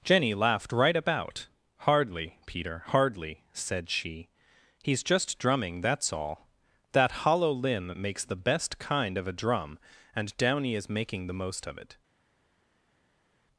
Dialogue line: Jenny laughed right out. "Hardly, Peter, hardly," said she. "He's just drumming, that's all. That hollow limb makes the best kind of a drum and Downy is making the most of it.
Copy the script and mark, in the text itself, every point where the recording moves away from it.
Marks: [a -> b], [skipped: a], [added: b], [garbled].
Jenny laughed right [out. -> about] "Hardly, Peter, hardly," said she. "He's just drumming, that's all. That hollow limb makes the best kind of a drum and Downy is making the most of it.